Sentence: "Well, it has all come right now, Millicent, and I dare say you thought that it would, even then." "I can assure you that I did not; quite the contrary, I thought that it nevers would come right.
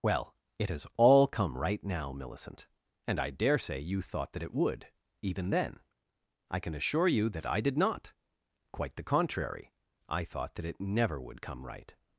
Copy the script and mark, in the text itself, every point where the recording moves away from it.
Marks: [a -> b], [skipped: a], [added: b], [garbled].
"Well, it has all come right now, Millicent, and I dare say you thought that it would, even then." "I can assure you that I did not; quite the contrary, I thought that it [nevers -> never] would come right.